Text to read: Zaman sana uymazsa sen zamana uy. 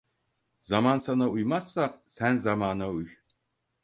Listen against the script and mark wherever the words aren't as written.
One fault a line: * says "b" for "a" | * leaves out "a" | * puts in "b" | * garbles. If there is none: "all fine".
all fine